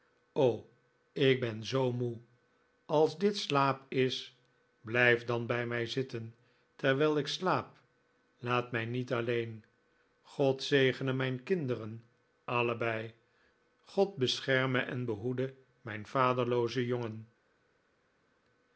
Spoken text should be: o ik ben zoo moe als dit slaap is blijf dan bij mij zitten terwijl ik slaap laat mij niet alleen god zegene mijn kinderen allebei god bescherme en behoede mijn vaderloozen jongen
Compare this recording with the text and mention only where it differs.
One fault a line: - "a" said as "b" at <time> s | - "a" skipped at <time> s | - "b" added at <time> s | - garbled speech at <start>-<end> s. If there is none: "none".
none